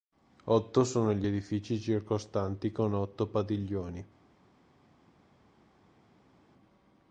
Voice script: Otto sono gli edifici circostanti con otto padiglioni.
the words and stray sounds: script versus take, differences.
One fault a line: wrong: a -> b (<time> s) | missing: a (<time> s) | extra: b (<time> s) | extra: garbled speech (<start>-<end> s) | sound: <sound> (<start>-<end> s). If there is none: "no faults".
no faults